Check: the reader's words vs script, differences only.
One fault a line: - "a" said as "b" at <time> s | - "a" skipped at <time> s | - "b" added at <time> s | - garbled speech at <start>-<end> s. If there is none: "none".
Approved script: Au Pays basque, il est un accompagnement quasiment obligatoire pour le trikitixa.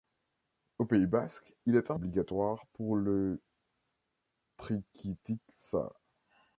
- "accompagnement quasiment" skipped at 2.0 s